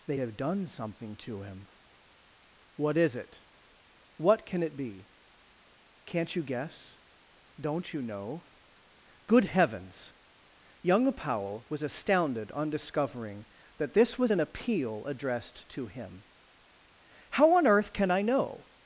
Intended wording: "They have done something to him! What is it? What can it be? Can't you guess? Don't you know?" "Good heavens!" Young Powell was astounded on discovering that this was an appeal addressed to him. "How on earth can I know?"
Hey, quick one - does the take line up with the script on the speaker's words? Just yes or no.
yes